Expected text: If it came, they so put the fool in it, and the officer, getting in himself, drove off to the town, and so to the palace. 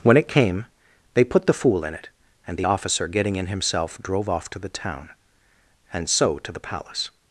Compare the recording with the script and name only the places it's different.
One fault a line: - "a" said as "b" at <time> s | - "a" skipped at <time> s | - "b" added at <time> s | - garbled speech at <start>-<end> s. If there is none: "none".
- "If" said as "When" at 0.0 s
- "so" skipped at 1.2 s